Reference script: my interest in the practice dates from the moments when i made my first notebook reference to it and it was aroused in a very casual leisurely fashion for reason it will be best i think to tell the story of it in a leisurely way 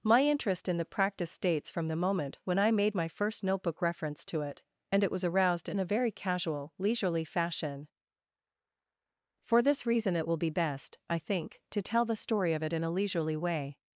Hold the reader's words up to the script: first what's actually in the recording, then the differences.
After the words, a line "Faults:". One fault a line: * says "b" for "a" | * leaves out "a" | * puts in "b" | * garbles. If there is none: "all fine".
my interest in the practice dates from the moment when i made my first notebook reference to it and it was aroused in a very casual leisurely fashion for this reason it will be best i think to tell the story of it in a leisurely way
Faults:
* says "moment" for "moments"
* puts in "this"